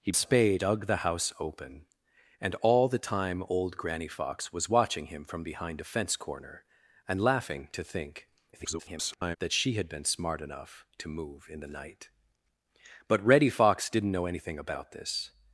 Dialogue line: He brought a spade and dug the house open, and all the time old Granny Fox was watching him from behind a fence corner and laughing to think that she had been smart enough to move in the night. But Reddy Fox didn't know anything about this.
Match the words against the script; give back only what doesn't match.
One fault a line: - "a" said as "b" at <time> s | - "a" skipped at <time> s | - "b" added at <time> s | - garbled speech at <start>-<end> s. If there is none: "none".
- "brought" skipped at 0.1 s
- "and" skipped at 0.6 s
- garbled speech at 8.5-9.4 s